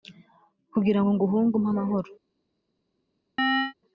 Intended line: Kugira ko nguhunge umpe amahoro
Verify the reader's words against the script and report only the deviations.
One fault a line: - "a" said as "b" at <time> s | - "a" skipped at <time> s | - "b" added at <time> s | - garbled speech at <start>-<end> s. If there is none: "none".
- "ko" said as "ngo" at 1.0 s